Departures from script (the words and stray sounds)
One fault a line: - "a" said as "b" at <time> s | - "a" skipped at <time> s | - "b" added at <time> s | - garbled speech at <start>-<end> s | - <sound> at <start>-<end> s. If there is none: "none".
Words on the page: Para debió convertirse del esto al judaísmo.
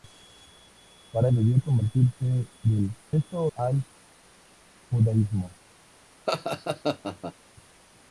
- laugh at 6.3-7.3 s